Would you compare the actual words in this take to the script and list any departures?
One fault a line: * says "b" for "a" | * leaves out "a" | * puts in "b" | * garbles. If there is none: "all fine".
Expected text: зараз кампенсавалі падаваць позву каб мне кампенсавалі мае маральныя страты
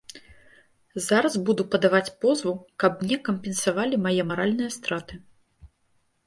* says "буду" for "кампенсавалі"